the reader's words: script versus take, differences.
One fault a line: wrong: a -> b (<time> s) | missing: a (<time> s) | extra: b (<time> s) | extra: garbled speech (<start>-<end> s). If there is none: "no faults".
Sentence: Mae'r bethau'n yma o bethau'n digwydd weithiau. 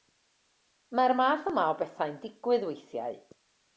wrong: bethau'n -> math (1.2 s)